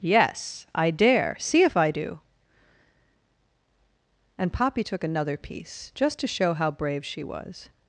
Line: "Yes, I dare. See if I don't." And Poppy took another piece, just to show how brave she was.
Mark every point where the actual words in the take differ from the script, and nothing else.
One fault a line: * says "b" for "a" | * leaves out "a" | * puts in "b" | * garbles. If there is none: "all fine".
* says "do" for "don't"